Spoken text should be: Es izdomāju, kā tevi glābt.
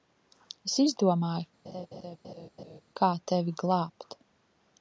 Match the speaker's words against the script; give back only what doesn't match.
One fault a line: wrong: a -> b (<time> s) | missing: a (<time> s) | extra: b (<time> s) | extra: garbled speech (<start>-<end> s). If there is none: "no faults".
no faults